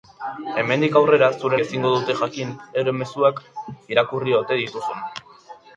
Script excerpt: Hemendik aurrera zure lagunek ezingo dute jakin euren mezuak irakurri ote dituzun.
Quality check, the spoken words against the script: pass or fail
fail